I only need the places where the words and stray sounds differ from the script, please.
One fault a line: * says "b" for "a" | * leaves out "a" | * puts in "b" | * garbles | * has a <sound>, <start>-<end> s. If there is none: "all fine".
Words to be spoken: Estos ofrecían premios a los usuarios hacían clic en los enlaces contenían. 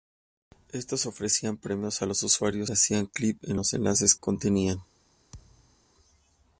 * has a thud, 5.3-5.8 s